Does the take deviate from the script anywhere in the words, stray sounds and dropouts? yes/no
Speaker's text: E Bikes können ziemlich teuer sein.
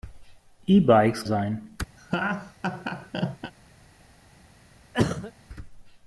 yes